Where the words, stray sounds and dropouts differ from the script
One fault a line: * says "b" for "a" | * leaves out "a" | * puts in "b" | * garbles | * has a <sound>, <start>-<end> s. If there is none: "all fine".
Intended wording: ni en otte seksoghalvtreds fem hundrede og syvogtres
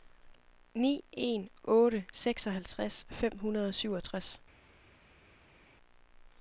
all fine